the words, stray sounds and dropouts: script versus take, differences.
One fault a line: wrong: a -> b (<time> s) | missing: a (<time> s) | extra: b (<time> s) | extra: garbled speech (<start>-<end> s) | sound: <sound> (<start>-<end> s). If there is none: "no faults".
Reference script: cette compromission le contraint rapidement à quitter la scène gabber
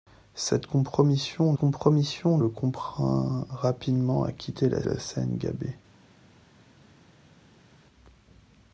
extra: compromission (1.5 s)
extra: la (4.8 s)